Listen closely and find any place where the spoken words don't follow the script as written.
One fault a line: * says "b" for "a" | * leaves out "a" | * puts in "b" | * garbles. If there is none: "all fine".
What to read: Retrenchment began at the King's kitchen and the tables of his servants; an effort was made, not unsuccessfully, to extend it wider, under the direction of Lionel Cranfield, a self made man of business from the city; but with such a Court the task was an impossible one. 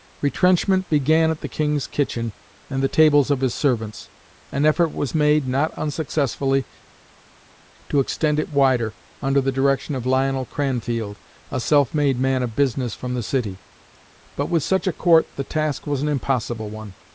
all fine